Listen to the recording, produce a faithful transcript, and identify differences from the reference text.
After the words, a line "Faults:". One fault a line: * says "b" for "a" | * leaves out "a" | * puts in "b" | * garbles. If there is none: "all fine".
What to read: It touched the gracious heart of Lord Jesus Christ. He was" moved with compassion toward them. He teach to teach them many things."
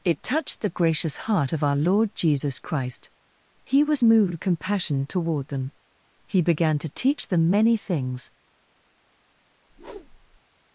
It touched the gracious heart of our Lord Jesus Christ. He was" moved with compassion toward them. He began to teach them many things."
Faults:
* puts in "our"
* says "began" for "teach"